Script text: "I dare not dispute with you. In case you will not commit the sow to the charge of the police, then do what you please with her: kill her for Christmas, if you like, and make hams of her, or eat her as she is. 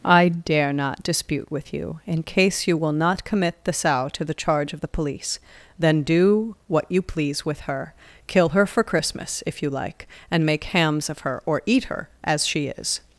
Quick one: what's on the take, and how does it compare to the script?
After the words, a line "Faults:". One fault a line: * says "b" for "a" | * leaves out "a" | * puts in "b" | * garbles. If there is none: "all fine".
"I dare not dispute with you. In case you will not commit the sow to the charge of the police, then do what you please with her: kill her for Christmas, if you like, and make hams of her, or eat her as she is.
Faults:
all fine